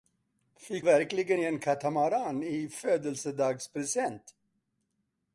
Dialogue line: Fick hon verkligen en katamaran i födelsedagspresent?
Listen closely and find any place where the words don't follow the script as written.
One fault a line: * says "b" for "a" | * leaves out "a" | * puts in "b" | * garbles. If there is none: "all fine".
* leaves out "hon"